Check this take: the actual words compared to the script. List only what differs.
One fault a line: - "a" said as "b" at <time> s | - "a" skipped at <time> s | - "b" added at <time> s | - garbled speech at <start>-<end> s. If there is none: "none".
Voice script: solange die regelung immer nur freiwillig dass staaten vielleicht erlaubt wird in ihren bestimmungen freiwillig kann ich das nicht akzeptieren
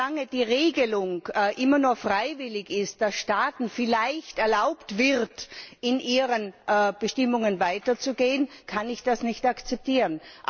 - "ist" added at 2.7 s
- "freiwillig" said as "weiterzugehen" at 7.6 s